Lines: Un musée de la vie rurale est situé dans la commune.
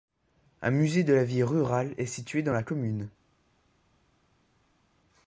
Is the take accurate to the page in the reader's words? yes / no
yes